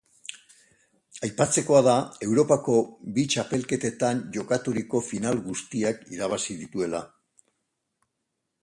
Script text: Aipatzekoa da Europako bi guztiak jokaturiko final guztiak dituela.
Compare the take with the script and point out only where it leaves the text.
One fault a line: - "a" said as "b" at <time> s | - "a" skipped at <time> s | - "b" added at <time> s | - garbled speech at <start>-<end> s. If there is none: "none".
- "guztiak" said as "txapelketetan" at 3.3 s
- "irabazi" added at 6.2 s